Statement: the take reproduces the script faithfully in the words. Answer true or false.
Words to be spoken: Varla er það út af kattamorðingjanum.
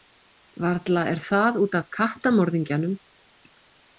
true